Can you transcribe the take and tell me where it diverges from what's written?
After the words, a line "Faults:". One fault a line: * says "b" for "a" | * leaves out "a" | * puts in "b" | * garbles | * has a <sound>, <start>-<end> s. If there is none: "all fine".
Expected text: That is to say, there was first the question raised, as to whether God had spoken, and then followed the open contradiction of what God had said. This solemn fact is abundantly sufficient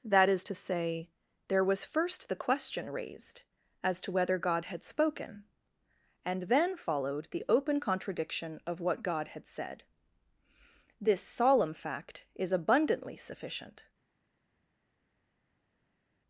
That is to say, there was first the question raised, as to whether God had spoken, and then followed the open contradiction of what God had said. This solemn fact is abundantly sufficient
Faults:
all fine